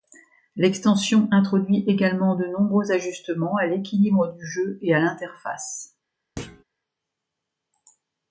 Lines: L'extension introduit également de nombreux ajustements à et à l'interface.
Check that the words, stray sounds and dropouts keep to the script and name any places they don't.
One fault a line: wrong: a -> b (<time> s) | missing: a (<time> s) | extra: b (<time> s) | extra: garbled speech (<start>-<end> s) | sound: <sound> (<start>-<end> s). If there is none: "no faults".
extra: l'équilibre du jeu (3.7 s)
sound: thud (6.4-6.6 s)